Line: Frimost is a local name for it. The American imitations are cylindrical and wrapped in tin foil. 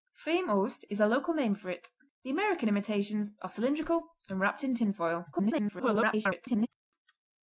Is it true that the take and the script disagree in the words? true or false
true